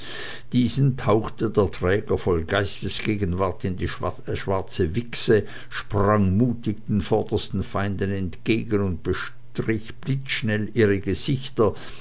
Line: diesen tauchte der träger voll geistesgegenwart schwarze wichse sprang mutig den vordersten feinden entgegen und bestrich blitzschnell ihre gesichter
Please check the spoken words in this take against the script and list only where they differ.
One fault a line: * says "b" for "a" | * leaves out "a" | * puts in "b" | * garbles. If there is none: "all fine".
* puts in "in die"